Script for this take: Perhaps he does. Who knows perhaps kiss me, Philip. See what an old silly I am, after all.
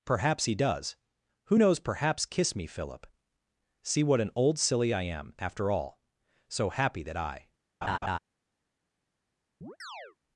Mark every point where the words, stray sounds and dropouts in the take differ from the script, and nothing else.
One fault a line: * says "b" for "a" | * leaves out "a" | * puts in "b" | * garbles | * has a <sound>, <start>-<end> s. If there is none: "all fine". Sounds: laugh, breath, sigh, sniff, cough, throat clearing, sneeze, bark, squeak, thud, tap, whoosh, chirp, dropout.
* puts in "So happy that I"
* has a laugh, 7.8-8.2 s
* has a chirp, 9.6-10.2 s